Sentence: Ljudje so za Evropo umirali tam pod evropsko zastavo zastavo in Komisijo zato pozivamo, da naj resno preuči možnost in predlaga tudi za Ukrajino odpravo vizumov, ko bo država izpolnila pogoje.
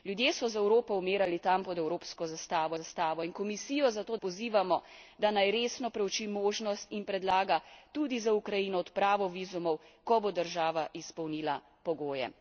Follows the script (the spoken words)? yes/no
yes